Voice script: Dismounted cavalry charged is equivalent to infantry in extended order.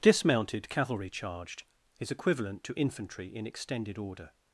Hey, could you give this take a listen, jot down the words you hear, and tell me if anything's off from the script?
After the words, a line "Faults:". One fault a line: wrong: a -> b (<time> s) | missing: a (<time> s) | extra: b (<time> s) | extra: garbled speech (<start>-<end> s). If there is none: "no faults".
Dismounted cavalry charged is equivalent to infantry in extended order.
Faults:
no faults